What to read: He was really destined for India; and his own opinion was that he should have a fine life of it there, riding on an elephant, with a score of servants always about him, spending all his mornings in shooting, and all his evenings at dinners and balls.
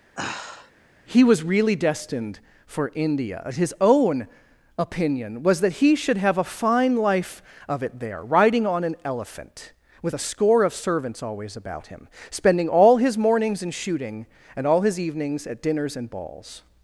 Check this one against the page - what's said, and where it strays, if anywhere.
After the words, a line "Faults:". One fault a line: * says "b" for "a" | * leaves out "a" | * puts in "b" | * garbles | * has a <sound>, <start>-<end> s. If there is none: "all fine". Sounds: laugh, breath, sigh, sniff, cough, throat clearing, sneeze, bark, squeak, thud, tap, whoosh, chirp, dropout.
He was really destined for India; his own opinion was that he should have a fine life of it there, riding on an elephant, with a score of servants always about him, spending all his mornings in shooting, and all his evenings at dinners and balls.
Faults:
* has a sigh, 0.2-0.7 s
* leaves out "and"